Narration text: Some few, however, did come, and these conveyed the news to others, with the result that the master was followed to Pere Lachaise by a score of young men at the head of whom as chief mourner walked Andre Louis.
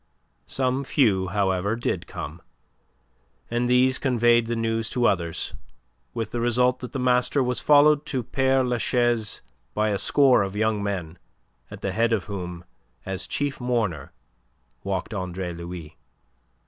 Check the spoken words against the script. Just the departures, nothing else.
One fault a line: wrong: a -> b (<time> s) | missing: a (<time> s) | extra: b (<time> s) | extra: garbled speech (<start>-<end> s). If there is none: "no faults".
no faults